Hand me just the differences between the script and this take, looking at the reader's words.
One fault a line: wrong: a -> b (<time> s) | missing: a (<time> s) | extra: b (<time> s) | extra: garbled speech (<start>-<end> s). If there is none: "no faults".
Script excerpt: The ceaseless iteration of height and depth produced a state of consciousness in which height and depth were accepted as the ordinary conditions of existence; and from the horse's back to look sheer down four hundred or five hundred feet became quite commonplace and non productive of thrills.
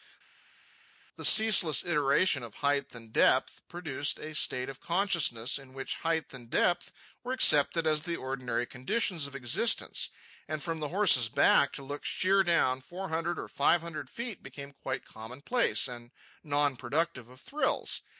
no faults